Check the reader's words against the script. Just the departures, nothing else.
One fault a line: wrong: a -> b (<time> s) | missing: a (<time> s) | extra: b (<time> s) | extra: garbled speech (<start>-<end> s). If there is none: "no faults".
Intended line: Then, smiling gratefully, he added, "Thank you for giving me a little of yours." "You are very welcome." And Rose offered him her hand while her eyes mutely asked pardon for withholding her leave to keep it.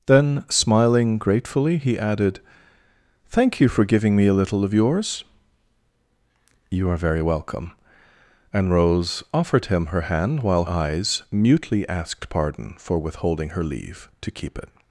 missing: her (10.7 s)